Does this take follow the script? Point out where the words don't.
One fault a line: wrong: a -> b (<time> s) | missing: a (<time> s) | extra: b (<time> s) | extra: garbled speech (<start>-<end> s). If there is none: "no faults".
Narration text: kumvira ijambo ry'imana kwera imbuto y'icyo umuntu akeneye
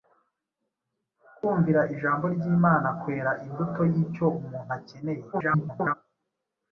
extra: garbled speech (5.3-5.9 s)